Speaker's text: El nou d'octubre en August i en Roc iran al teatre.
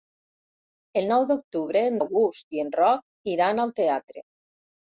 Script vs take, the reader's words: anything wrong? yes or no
no